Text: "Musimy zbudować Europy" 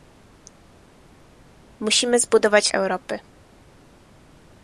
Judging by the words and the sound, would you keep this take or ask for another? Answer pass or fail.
pass